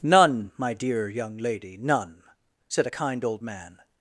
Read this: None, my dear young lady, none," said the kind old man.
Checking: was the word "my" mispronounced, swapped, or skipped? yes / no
no